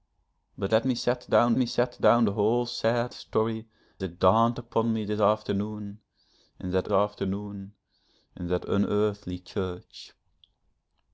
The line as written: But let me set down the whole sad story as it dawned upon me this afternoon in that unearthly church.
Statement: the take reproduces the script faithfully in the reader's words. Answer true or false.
false